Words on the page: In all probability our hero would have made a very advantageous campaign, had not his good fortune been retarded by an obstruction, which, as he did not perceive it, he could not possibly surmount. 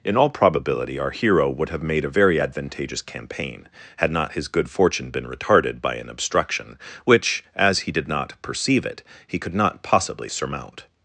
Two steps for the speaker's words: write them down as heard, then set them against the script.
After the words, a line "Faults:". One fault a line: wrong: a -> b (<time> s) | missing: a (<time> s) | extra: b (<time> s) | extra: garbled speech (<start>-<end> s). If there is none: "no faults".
In all probability our hero would have made a very advantageous campaign, had not his good fortune been retarded by an obstruction, which, as he did not perceive it, he could not possibly surmount.
Faults:
no faults